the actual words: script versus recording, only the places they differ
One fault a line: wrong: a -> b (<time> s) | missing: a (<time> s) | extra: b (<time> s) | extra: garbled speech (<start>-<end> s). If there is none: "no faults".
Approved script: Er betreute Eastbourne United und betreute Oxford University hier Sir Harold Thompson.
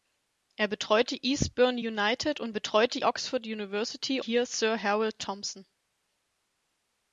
no faults